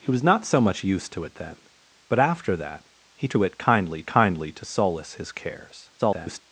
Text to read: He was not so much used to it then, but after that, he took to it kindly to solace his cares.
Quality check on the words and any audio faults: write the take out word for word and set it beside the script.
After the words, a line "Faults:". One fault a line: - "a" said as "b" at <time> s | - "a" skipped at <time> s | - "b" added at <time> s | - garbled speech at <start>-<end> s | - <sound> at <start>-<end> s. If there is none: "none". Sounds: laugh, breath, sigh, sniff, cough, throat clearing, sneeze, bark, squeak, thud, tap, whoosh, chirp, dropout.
He was not so much used to it then, but after that, he to it kindly kindly to solace his cares. [garbled]
Faults:
- "took" skipped at 3.3 s
- "kindly" added at 4.1 s
- garbled speech at 6.0-6.4 s